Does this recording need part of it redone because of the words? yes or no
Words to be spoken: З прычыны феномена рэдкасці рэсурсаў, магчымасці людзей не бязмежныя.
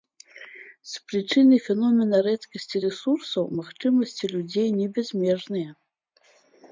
no